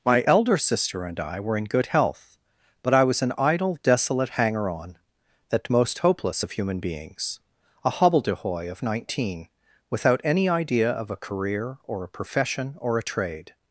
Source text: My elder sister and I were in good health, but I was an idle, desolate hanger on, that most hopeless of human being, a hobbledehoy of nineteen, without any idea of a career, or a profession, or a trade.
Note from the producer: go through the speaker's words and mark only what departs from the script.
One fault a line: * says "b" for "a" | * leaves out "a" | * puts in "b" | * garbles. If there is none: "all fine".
* says "beings" for "being"